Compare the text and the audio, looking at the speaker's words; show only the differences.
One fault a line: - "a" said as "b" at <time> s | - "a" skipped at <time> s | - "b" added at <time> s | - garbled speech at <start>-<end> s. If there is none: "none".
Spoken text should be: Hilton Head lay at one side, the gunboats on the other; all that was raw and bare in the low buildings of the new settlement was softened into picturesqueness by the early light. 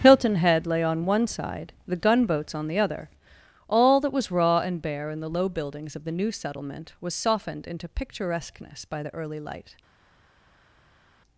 - "at" said as "on" at 0.8 s